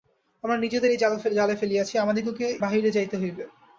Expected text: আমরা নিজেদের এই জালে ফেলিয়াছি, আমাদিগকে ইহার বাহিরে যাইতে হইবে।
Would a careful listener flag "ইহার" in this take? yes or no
yes